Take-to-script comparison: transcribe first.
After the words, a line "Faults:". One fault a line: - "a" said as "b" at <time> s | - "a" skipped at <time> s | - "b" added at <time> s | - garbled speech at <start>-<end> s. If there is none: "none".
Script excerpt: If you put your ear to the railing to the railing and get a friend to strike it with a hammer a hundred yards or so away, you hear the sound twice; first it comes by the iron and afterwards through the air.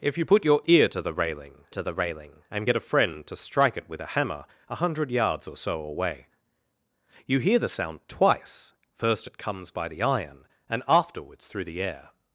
If you put your ear to the railing to the railing and get a friend to strike it with a hammer a hundred yards or so away, you hear the sound twice; first it comes by the iron and afterwards through the air.
Faults:
none